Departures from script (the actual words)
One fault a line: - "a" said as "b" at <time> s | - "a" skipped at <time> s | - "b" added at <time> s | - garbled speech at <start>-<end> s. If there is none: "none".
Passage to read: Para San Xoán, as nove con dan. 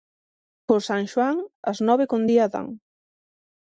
- "Para" said as "Por" at 0.7 s
- "día" added at 2.3 s